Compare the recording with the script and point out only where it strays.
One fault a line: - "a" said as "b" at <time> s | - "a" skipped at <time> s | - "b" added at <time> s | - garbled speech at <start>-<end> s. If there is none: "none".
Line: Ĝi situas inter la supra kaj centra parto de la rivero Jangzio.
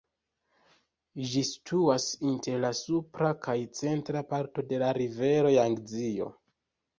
none